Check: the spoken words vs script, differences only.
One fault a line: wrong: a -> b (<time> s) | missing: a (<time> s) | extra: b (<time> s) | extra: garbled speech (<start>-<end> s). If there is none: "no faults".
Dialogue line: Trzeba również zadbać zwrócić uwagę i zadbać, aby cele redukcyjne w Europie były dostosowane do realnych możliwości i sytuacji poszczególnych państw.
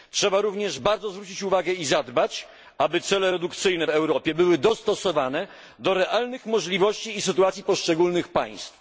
wrong: zadbać -> bardzo (0.8 s)